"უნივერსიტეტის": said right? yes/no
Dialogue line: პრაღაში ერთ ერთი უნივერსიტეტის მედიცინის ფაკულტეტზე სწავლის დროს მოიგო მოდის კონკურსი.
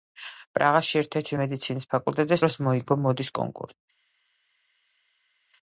no